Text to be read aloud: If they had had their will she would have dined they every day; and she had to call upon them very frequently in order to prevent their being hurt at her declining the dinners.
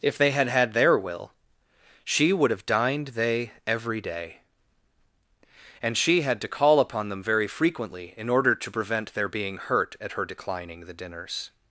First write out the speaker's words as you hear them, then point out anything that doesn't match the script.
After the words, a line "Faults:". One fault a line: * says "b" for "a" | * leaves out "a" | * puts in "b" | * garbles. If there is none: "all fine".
If they had had their will she would have dined they every day; and she had to call upon them very frequently in order to prevent their being hurt at her declining the dinners.
Faults:
all fine